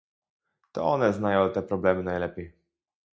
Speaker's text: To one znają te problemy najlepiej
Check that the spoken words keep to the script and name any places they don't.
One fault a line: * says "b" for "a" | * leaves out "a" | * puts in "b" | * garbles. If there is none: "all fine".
all fine